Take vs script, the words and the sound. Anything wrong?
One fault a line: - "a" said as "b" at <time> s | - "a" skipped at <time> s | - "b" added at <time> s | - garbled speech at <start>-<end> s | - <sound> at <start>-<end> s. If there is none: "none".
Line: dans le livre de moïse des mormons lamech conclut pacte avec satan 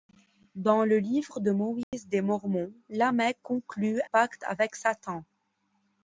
- dropout at 1.8-1.9 s